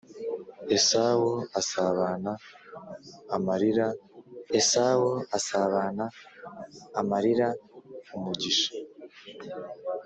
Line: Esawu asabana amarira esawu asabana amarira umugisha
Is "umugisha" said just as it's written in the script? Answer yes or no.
yes